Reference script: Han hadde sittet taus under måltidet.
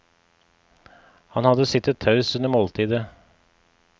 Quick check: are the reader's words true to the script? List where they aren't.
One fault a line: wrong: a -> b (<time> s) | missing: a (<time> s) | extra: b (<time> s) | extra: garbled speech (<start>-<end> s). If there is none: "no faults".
no faults